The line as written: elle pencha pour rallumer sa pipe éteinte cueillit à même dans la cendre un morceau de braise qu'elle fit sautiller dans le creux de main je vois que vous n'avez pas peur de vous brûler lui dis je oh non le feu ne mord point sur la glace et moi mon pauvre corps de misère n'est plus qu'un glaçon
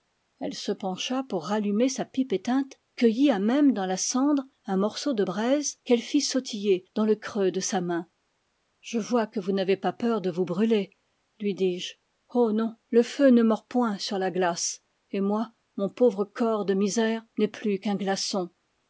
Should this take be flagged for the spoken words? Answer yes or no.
yes